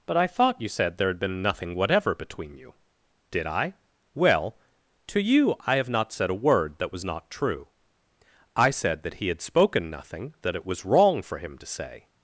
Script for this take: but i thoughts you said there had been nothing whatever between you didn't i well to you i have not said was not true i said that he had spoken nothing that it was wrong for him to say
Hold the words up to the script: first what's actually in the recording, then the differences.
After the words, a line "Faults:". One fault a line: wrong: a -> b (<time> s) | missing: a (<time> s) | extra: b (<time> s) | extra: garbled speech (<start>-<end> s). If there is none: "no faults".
but i thought you said there had been nothing whatever between you did i well to you i have not said a word that was not true i said that he had spoken nothing that it was wrong for him to say
Faults:
wrong: thoughts -> thought (0.3 s)
wrong: didn't -> did (3.3 s)
extra: a word that (6.3 s)